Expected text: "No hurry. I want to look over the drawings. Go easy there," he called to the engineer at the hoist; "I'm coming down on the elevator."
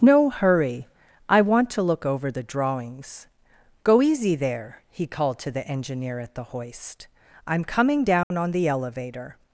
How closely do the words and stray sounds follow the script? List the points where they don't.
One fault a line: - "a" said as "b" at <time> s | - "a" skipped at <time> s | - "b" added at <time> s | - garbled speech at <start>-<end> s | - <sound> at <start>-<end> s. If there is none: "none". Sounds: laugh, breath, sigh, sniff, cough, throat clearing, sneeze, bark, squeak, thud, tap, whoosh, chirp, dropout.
- dropout at 8.2-8.3 s